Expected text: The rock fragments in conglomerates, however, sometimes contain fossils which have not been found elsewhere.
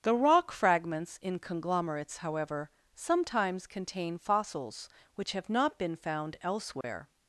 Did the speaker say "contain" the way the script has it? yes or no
yes